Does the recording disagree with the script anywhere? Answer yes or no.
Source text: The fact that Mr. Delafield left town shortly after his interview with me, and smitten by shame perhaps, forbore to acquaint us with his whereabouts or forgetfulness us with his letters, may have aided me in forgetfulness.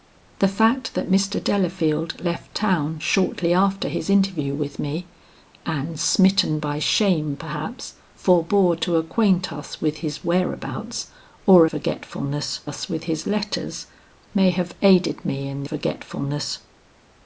no